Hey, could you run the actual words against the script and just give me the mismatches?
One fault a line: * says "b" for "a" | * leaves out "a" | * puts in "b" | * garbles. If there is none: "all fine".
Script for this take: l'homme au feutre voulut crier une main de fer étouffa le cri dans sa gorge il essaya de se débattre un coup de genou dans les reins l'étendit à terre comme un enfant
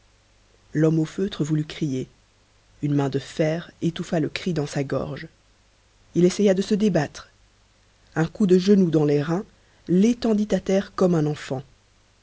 all fine